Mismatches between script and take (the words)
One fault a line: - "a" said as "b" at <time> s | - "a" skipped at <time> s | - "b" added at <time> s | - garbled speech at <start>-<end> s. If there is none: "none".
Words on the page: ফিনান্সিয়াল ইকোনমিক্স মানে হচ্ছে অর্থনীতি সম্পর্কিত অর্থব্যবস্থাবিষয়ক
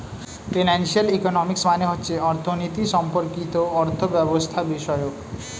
none